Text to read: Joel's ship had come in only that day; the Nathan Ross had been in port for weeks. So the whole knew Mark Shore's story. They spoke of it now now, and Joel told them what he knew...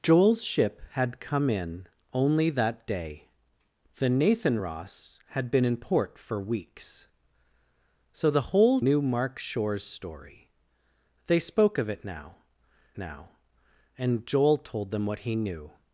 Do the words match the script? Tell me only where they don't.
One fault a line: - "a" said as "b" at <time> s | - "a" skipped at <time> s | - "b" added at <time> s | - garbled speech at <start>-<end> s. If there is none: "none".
none